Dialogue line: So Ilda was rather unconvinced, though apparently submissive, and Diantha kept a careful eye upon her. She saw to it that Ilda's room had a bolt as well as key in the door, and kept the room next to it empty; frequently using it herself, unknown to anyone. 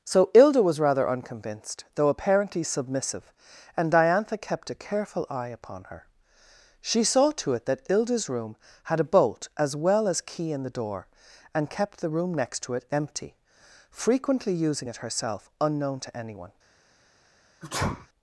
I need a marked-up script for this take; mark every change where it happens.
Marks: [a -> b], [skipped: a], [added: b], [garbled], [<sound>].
So Ilda was rather unconvinced, though apparently submissive, and Diantha kept a careful eye upon her. She saw to it that Ilda's room had a bolt as well as key in the door, and kept the room next to it empty; frequently using it herself, unknown to anyone. [sneeze]